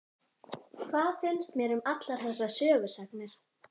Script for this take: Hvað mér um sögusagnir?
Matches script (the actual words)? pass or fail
fail